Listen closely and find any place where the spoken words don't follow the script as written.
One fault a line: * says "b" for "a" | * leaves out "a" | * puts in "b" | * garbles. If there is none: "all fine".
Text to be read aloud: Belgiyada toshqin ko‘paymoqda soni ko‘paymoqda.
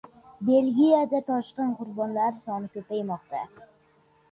* says "qurbonlari" for "ko‘paymoqda"